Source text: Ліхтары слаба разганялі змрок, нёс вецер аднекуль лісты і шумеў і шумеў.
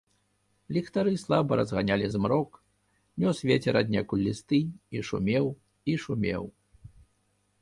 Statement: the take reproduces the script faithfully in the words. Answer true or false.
true